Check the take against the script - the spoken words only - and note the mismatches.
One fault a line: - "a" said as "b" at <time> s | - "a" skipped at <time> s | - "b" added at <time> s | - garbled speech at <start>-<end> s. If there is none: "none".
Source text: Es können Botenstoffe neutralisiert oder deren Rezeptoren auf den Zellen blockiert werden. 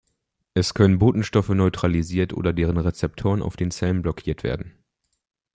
none